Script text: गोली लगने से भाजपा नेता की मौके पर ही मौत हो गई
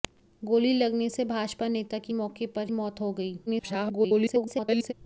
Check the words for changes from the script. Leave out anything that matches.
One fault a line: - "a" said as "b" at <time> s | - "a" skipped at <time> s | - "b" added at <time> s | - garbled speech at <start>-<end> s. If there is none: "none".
- "ही" skipped at 2.7 s
- garbled speech at 3.5-4.9 s